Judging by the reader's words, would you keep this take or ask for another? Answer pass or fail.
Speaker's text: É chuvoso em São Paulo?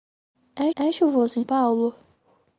fail